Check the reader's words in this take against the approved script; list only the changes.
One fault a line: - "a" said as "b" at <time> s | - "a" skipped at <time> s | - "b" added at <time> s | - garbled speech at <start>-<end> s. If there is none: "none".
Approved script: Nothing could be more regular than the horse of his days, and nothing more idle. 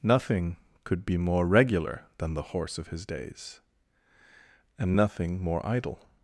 none